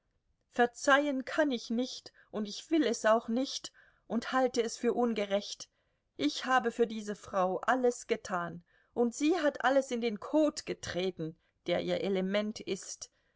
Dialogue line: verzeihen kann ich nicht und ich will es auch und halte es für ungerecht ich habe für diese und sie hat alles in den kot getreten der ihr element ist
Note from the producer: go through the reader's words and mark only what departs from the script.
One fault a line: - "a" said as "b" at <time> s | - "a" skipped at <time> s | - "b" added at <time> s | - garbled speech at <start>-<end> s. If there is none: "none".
- "nicht" added at 3.3 s
- "frau alles getan" added at 7.2 s